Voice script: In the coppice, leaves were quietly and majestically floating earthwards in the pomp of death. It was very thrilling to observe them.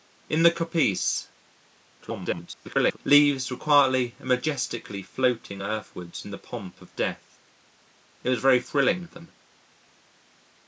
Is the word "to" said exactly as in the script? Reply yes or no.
no